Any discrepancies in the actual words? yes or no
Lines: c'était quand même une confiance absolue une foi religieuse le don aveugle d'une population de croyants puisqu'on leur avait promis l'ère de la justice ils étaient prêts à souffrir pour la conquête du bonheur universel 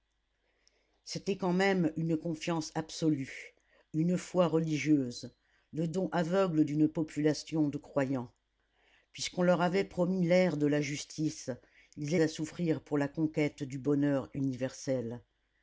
yes